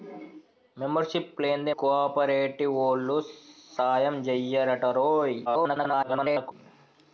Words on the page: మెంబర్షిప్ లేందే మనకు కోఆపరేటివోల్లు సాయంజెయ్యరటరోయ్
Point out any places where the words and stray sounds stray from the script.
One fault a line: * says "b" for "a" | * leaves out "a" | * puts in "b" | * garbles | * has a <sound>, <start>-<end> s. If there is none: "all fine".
* leaves out "మనకు"
* garbles